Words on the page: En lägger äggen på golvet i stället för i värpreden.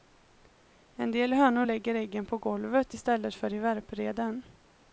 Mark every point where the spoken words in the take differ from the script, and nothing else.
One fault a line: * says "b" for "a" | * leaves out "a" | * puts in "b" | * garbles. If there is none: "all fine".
* puts in "del hönor"